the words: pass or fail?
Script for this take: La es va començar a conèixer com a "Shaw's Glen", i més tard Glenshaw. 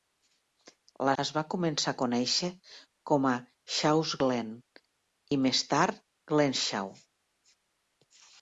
pass